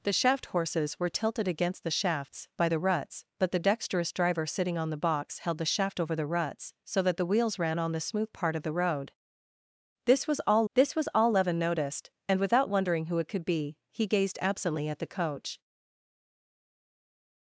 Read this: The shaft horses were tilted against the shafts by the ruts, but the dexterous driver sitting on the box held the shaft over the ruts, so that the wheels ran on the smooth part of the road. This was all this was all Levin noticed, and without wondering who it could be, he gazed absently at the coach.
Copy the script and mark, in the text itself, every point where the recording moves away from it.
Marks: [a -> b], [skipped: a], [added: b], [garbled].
The shaft horses were tilted against the shafts by the ruts, but the dexterous driver sitting on the box held the shaft over the ruts, so that the wheels ran on the smooth part of the road. This was all this was all Levin noticed, and without wondering who it could be, he gazed absently at the coach.